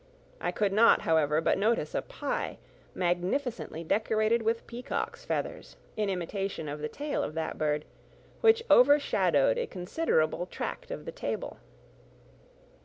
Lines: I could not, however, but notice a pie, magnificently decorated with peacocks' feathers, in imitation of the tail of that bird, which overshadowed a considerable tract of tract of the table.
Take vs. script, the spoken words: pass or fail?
fail